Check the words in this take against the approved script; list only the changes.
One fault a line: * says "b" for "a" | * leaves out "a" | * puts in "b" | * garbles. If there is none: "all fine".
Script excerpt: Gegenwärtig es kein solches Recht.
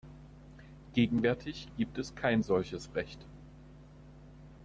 * puts in "gibt"